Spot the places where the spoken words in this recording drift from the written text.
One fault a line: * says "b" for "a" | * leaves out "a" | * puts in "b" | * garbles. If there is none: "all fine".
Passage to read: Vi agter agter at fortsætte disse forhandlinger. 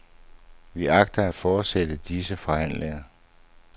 * leaves out "agter"